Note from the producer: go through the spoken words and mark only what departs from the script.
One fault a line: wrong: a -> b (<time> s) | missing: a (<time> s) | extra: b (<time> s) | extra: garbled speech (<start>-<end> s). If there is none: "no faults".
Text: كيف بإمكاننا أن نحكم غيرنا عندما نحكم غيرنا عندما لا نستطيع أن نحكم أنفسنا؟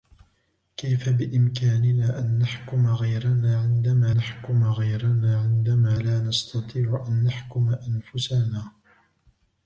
no faults